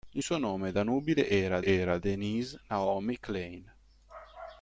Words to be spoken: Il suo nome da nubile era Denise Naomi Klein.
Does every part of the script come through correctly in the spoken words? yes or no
no